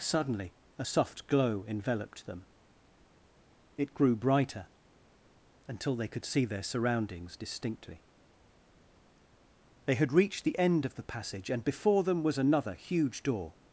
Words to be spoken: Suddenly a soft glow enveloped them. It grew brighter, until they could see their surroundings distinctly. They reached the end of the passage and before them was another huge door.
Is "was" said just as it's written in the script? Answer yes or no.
yes